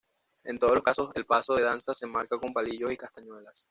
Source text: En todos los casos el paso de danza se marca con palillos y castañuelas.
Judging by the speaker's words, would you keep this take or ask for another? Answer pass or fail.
pass